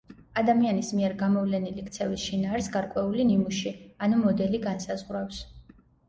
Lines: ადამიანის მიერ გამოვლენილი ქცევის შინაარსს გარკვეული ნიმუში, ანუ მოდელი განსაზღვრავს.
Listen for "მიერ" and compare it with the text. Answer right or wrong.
right